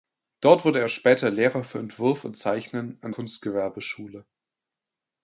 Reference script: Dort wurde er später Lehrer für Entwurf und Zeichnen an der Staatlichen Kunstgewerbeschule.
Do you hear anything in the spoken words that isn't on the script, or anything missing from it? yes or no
yes